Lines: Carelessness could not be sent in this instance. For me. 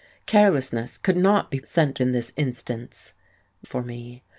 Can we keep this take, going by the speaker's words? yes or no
yes